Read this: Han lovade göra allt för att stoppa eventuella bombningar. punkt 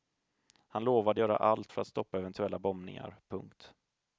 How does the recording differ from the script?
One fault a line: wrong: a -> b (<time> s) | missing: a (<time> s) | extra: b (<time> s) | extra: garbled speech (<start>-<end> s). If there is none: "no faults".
no faults